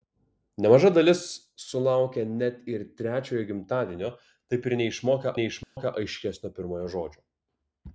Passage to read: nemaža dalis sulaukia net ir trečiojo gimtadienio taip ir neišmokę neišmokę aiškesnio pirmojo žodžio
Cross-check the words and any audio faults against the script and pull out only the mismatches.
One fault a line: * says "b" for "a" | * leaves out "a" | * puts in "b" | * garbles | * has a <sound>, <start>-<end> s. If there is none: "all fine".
* has a dropout, 5.6-5.8 s